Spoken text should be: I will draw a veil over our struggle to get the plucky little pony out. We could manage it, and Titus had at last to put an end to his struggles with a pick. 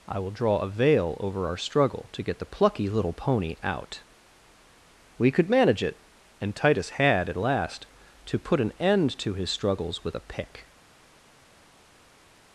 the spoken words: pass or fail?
pass